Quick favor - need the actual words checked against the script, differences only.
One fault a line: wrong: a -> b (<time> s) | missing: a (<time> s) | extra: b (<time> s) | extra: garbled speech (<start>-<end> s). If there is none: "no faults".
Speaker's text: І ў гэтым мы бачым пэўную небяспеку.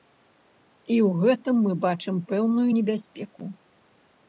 no faults